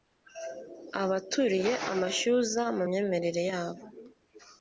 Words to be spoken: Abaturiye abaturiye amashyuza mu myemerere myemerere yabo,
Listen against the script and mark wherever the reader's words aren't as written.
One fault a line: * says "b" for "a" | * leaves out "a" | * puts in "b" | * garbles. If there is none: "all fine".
* leaves out "abaturiye"
* leaves out "myemerere"